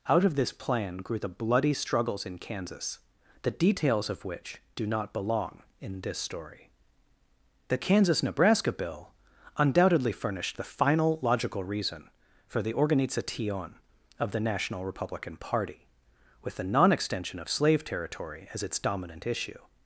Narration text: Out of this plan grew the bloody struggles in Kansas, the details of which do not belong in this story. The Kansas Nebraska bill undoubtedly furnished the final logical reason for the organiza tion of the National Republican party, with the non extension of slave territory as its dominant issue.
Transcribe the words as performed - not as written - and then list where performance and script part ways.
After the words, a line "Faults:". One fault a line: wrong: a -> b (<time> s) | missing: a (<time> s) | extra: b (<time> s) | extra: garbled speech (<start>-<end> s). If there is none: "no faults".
Out of this plan grew the bloody struggles in Kansas, the details of which do not belong in this story. The Kansas Nebraska bill undoubtedly furnished the final logical reason for the organiza tion of the National Republican party, with the non extension of slave territory as its dominant issue.
Faults:
no faults